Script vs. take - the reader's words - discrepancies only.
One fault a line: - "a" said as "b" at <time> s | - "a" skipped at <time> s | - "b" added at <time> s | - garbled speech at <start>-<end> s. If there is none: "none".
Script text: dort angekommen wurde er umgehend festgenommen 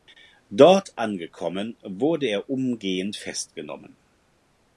none